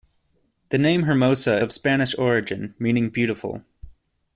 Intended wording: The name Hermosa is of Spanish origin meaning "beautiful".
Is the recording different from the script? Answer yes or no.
yes